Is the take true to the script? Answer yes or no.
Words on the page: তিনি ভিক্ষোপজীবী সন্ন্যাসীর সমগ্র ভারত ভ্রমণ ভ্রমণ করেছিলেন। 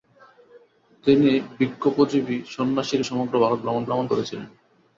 yes